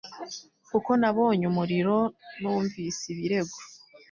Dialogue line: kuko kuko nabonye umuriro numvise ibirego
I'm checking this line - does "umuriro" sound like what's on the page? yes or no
yes